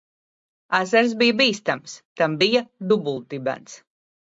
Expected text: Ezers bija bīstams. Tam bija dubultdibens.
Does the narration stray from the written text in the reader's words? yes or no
no